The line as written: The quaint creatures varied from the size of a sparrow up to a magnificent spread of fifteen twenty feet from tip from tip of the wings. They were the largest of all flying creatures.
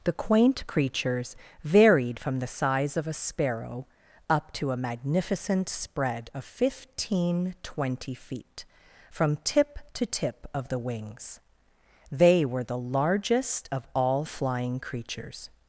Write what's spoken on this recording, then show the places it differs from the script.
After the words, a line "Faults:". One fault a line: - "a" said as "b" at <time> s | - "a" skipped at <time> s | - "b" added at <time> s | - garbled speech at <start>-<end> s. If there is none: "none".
The quaint creatures varied from the size of a sparrow up to a magnificent spread of fifteen twenty feet from tip to tip of the wings. They were the largest of all flying creatures.
Faults:
- "from" said as "to" at 9.9 s